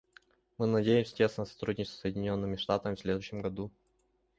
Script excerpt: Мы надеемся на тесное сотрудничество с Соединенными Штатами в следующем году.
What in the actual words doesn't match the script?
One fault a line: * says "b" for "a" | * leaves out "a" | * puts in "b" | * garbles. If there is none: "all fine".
* leaves out "на"